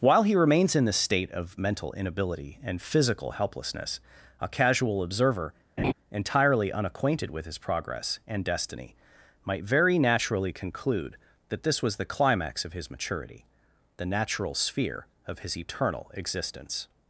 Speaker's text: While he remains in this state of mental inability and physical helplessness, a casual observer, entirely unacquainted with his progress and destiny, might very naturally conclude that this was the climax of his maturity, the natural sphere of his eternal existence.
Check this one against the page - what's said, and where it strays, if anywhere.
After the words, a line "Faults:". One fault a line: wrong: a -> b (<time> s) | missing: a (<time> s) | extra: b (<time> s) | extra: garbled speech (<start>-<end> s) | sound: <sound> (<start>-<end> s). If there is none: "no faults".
While he remains in this state of mental inability and physical helplessness, a casual observer, entirely unacquainted with his progress and destiny, might very naturally conclude that this was the climax of his maturity, the natural sphere of his eternal existence.
Faults:
sound: laugh (5.8-5.9 s)